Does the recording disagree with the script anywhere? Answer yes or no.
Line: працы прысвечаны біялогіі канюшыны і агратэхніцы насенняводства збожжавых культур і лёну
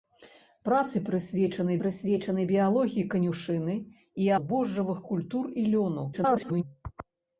yes